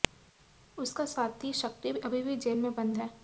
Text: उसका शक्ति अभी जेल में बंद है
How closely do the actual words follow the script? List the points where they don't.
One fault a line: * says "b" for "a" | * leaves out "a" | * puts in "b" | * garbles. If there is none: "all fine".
* puts in "साथी"
* puts in "भी"